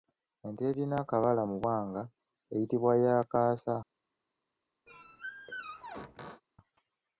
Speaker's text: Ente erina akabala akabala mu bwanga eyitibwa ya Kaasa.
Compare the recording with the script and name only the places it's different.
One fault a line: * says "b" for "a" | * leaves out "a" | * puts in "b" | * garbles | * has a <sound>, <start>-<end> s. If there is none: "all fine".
* leaves out "akabala"
* has a squeak, 4.9-6.4 s